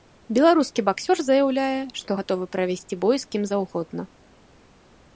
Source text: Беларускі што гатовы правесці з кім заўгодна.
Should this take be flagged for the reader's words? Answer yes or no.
yes